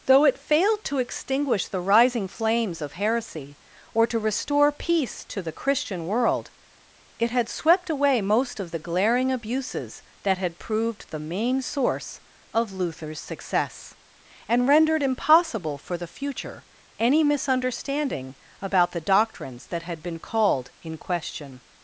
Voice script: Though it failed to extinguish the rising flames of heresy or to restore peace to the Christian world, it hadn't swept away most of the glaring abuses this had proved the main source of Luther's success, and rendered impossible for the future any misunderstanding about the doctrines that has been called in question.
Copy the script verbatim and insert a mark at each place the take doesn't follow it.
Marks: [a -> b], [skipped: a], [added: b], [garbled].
Though it failed to extinguish the rising flames of heresy or to restore peace to the Christian world, it [hadn't -> had] swept away most of the glaring abuses [this -> that] had proved the main source of Luther's success, and rendered impossible for the future any misunderstanding about the doctrines that [has -> had] been called in question.